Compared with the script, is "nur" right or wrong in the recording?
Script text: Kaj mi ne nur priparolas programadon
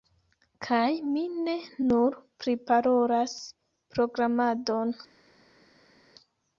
right